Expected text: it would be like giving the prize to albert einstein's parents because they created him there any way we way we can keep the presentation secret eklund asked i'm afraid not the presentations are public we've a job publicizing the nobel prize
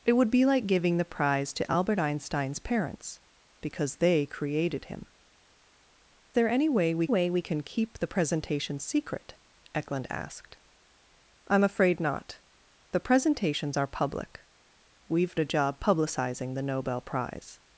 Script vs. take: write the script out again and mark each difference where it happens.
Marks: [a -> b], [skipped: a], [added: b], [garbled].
it would be like giving the prize to albert einstein's parents because they created him there any way we way we can keep the presentation secret eklund asked i'm afraid not the presentations are public we've a job publicizing the nobel prize